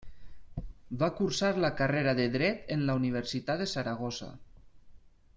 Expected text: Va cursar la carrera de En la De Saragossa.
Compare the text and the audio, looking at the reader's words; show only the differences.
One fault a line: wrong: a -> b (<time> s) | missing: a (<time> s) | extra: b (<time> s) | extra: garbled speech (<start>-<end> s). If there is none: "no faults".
extra: Dret (2.4 s)
extra: Universitat (3.0 s)